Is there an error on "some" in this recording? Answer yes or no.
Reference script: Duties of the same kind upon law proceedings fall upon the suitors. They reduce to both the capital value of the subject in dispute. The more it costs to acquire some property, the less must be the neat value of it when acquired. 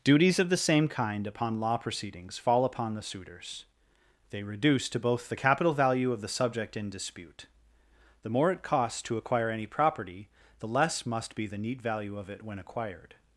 yes